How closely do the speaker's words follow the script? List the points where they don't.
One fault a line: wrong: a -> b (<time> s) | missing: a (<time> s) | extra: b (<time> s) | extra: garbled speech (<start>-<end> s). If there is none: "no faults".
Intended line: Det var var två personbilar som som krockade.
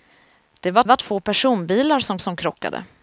no faults